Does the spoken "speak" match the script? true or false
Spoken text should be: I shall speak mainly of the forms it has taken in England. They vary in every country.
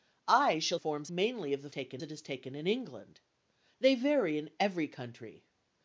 false